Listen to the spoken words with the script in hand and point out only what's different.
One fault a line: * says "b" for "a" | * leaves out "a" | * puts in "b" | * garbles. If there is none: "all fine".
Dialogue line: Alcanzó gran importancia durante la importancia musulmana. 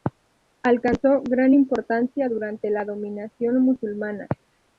* says "dominación" for "importancia"